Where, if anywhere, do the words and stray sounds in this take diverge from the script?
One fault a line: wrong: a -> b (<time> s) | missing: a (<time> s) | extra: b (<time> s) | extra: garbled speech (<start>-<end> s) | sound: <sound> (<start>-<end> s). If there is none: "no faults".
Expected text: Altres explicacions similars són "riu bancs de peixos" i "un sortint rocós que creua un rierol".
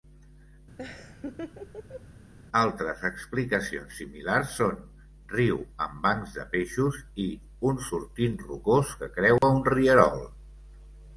sound: laugh (0.8-2.0 s)
extra: amb (5.9 s)
sound: dropout (9.4-9.4 s)